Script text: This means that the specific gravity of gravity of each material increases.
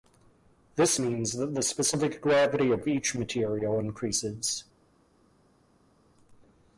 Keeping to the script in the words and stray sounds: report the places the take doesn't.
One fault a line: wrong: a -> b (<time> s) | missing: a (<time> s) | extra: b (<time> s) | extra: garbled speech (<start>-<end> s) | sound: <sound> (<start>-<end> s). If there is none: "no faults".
missing: gravity of (2.9 s)